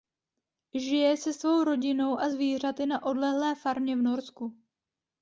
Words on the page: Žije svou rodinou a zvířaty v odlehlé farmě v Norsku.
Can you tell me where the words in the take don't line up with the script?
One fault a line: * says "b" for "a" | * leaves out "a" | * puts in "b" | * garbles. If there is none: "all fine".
* puts in "se"
* says "na" for "v"